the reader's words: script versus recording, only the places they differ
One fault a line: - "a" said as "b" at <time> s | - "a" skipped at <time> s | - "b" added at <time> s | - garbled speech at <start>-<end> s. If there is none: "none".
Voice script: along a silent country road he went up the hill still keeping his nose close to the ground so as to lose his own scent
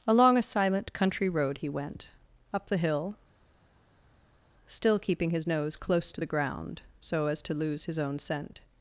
none